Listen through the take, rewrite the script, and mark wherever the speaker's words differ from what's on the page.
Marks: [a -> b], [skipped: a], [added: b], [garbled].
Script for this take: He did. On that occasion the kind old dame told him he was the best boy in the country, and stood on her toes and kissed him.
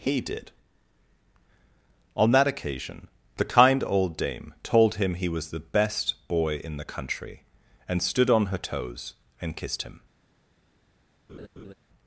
He did. On that occasion the kind old dame told him he was the best boy in the country, and stood on her toes and kissed him.